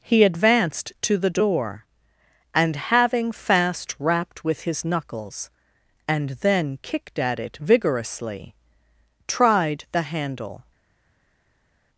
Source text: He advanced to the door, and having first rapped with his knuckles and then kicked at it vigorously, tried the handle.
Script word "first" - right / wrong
wrong